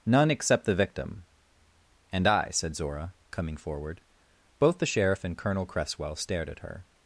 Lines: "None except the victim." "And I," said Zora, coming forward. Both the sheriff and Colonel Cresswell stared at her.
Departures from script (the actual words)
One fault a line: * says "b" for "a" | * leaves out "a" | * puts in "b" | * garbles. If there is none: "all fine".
all fine